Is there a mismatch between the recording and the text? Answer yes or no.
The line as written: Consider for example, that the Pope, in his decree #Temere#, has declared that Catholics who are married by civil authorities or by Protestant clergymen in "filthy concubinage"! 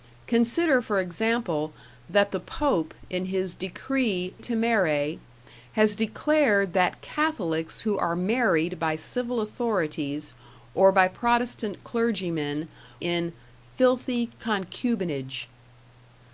no